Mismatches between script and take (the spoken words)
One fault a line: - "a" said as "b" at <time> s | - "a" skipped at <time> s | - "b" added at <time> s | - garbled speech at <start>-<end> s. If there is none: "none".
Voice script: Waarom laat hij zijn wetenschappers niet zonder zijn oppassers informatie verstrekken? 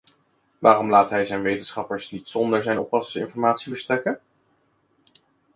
none